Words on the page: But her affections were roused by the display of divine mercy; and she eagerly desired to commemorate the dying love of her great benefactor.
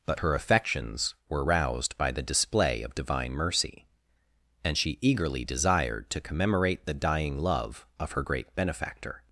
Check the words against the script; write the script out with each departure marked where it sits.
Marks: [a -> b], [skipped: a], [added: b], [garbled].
But her affections were roused by the display of divine mercy; and she eagerly desired to commemorate the dying love of her great benefactor.